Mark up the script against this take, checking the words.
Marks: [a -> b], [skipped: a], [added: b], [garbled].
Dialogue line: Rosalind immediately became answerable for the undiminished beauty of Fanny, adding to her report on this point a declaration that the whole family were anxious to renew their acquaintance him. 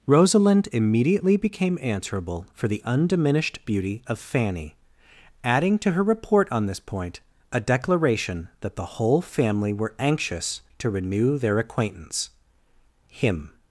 Rosalind immediately became answerable for the undiminished beauty of Fanny, adding to her report on this point a declaration that the whole family were anxious to renew their acquaintance him.